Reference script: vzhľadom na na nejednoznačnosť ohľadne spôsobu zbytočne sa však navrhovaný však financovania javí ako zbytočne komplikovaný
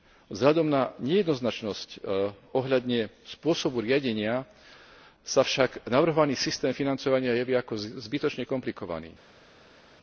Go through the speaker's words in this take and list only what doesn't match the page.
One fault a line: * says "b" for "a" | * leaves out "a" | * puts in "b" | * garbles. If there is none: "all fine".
* leaves out "na"
* says "riadenia" for "zbytočne"
* says "systém" for "však"